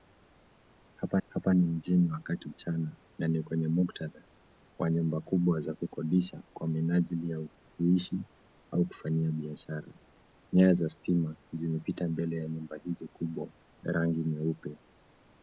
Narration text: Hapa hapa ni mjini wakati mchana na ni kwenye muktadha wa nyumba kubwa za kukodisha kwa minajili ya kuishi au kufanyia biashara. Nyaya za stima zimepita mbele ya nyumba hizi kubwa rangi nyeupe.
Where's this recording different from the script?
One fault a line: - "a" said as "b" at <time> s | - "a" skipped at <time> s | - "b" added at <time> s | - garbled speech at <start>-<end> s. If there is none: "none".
none